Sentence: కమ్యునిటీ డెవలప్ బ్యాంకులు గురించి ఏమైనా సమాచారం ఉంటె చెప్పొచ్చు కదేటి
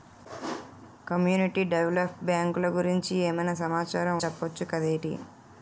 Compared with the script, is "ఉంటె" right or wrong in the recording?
wrong